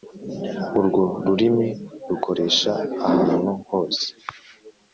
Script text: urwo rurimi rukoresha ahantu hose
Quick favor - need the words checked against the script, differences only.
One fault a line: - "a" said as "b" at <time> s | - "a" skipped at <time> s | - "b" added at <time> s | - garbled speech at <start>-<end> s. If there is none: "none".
none